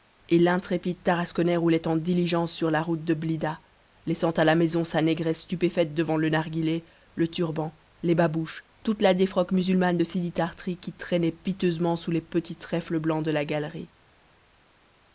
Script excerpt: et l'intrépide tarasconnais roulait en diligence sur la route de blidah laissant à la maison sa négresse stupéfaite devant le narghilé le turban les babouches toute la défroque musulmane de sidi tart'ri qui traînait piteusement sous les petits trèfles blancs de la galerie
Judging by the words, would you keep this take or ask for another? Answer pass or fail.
pass